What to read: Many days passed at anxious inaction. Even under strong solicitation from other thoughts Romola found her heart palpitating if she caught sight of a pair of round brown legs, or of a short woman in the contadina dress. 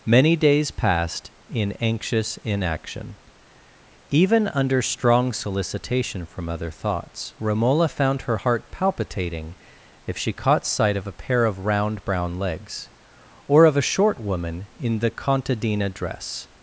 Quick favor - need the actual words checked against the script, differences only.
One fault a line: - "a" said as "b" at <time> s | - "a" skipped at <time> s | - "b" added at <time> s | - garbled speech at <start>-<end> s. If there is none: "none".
- "at" said as "in" at 1.5 s